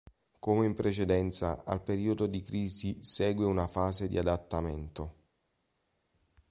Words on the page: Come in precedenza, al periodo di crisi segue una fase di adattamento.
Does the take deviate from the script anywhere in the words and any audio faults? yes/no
no